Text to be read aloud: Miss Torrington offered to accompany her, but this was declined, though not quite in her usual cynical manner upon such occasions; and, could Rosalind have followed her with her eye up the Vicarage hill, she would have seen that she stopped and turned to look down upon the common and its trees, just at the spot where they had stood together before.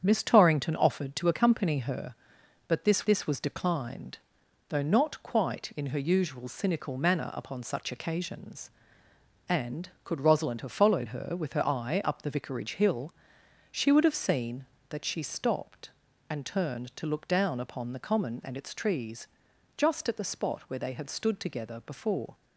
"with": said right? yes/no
yes